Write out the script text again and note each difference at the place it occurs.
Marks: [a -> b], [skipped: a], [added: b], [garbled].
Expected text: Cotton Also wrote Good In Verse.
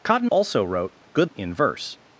Cotton Also wrote Good In Verse.